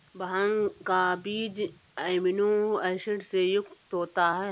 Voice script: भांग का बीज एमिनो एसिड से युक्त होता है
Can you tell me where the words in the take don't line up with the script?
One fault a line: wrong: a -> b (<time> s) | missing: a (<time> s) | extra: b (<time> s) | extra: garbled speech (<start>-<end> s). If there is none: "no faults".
no faults